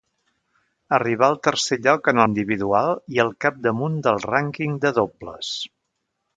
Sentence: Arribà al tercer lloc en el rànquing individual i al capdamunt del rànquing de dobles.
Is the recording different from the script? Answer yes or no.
yes